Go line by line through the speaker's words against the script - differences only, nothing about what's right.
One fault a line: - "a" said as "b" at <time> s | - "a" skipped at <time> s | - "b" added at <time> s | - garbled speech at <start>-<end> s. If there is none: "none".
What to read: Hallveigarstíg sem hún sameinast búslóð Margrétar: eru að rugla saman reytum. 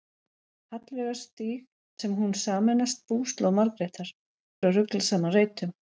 none